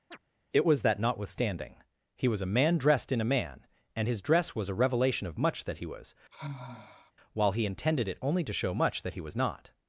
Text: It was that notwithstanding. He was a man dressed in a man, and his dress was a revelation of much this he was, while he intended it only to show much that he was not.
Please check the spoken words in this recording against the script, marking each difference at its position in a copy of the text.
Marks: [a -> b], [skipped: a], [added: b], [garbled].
It was that notwithstanding. He was a man dressed in a man, and his dress was a revelation of much [this -> that] he was, while he intended it only to show much that he was not.